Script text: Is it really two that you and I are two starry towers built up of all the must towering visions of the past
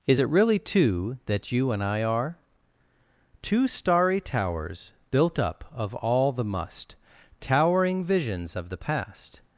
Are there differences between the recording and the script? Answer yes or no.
no